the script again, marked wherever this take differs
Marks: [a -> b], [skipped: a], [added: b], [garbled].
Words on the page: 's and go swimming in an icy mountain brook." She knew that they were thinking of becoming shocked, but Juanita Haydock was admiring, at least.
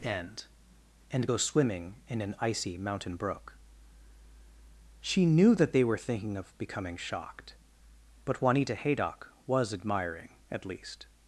['s -> end] and go swimming in an icy mountain brook." She knew that they were thinking of becoming shocked, but Juanita Haydock was admiring, at least.